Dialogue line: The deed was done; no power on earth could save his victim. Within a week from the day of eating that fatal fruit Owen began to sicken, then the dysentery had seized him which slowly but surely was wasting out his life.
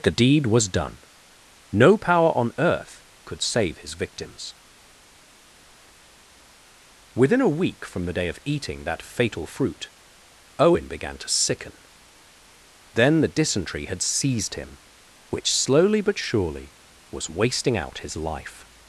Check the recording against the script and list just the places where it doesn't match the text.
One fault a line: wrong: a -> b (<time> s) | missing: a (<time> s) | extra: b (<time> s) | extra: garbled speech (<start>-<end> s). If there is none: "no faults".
wrong: victim -> victims (3.9 s)